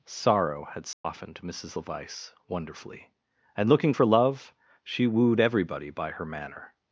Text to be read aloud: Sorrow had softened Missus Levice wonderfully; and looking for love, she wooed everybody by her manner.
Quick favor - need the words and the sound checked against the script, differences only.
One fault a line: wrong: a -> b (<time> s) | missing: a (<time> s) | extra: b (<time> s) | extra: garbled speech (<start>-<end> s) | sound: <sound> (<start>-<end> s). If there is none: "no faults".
sound: dropout (0.9-1.0 s)